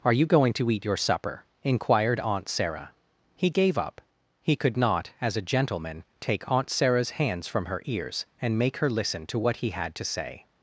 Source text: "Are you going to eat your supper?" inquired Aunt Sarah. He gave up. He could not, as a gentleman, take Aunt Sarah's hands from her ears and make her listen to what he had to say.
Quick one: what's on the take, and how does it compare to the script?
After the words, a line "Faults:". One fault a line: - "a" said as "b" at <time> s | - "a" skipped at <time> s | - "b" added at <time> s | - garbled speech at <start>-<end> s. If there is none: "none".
"Are you going to eat your supper?" inquired Aunt Sarah. He gave up. He could not, as a gentleman, take Aunt Sarah's hands from her ears and make her listen to what he had to say.
Faults:
none